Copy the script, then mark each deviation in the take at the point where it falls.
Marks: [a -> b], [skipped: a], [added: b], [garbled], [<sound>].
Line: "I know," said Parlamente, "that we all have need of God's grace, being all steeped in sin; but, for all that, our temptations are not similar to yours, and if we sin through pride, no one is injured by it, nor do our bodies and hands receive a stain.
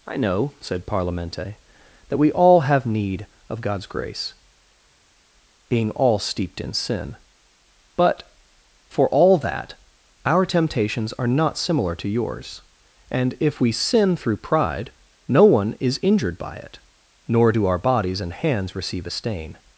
"I know," said Parlamente, "that we all have need of God's grace, being all steeped in sin; but, for all that, our temptations are not similar to yours, and if we sin through pride, no one is injured by it, nor do our bodies and hands receive a stain.